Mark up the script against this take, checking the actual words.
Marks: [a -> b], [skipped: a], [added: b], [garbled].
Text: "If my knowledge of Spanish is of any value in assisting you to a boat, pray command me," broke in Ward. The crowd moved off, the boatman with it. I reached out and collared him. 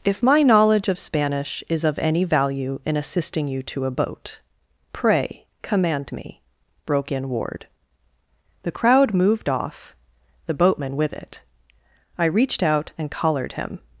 "If my knowledge of Spanish is of any value in assisting you to a boat, pray command me," broke in Ward. The crowd moved off, the boatman with it. I reached out and collared him.